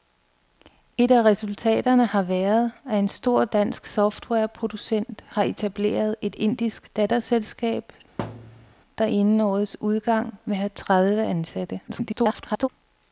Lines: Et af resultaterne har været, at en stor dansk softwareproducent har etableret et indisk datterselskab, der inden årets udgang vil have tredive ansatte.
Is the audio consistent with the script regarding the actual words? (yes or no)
no